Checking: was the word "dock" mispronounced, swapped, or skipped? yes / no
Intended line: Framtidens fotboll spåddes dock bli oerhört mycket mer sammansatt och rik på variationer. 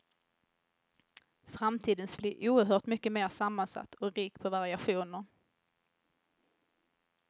yes